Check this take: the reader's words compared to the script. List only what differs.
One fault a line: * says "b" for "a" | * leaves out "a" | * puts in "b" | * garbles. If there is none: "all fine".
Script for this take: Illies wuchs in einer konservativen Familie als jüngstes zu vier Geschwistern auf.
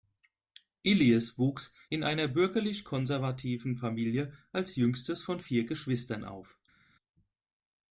* puts in "bürgerlich"
* says "von" for "zu"